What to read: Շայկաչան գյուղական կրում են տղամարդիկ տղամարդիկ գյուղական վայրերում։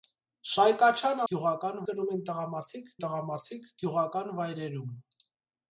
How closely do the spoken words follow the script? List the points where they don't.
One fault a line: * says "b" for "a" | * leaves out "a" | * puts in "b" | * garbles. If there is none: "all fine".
all fine